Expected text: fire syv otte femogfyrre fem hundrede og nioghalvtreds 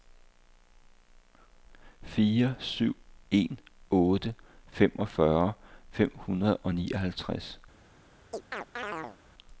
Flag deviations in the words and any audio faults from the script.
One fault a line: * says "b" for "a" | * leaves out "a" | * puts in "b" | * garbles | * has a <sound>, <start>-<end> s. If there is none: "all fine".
* puts in "en"
* has a chirp, 8.3-9.2 s